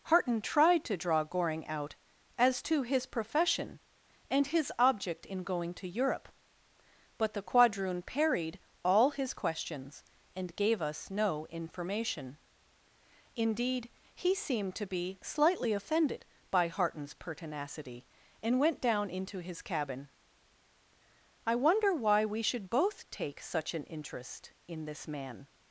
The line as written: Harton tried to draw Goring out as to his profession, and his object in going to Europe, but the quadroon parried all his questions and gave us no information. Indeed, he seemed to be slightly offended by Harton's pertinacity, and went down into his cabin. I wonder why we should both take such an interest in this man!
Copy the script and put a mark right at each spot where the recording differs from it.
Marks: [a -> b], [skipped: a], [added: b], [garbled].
Harton tried to draw Goring out as to his profession, and his object in going to Europe, but the quadroon parried all his questions and gave us no information. Indeed, he seemed to be slightly offended by Harton's pertinacity, and went down into his cabin. I wonder why we should both take such an interest in this man!